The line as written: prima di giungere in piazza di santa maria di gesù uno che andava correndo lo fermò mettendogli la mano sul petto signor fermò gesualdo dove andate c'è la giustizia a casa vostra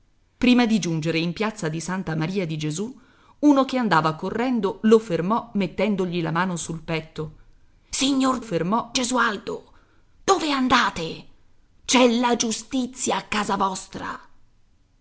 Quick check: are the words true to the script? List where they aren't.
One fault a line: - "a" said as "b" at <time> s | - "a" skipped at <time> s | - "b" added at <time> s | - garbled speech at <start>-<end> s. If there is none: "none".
none